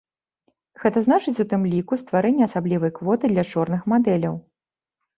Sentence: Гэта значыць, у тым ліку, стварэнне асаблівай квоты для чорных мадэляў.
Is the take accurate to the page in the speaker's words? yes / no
yes